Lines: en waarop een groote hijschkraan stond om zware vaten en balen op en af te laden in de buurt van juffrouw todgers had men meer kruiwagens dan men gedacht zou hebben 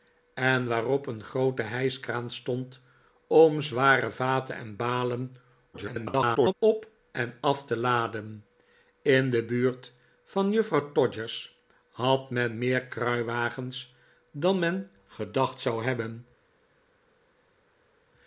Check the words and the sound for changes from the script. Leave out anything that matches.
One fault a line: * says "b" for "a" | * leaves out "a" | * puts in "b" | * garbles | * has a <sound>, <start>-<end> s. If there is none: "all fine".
* garbles